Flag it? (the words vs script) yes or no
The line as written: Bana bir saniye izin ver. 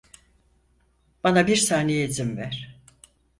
no